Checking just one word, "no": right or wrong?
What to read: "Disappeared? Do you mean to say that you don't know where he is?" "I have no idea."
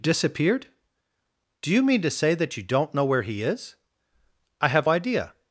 wrong